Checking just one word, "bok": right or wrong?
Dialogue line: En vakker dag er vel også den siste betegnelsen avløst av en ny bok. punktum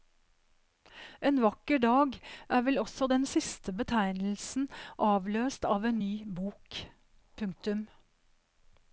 right